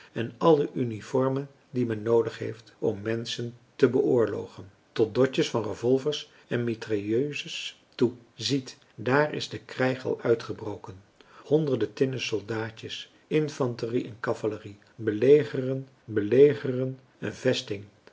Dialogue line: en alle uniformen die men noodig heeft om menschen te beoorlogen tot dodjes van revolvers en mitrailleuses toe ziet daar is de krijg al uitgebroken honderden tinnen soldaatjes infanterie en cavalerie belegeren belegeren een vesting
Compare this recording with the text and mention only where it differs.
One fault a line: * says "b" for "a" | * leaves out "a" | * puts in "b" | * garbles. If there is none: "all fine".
all fine